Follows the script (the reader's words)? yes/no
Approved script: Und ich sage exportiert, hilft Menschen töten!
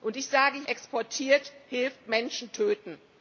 yes